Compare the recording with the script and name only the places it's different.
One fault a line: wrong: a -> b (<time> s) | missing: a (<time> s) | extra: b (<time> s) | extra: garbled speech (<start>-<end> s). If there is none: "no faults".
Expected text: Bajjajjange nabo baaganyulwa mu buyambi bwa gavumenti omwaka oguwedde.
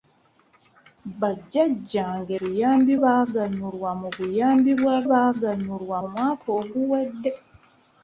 wrong: nabo -> buyambi (2.4 s)
wrong: gavumenti -> baaganyulwa (5.1 s)